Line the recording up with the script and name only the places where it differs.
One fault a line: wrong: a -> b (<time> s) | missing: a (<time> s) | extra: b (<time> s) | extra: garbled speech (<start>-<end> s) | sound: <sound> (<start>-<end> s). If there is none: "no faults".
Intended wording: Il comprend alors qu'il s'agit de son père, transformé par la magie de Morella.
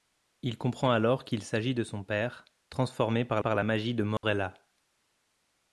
extra: par (3.4 s)
sound: dropout (4.2-4.2 s)